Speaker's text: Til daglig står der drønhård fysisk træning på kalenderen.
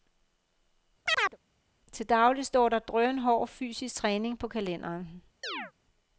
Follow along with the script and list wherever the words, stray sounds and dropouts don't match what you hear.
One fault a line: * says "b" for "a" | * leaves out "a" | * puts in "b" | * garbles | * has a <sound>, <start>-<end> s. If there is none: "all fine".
* has a chirp, 1.1-1.4 s
* has a chirp, 5.4-5.7 s